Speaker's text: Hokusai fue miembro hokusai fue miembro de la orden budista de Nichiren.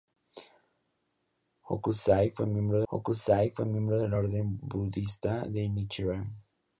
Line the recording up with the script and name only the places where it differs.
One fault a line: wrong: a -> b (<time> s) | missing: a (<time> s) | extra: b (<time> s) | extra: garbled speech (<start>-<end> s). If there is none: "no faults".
no faults